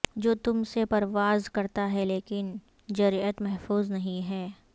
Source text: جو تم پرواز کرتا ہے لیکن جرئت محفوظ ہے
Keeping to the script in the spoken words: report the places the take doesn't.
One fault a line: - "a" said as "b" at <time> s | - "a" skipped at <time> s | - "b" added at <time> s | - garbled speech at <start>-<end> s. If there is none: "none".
- "سے" added at 0.6 s
- "نہیں" added at 3.9 s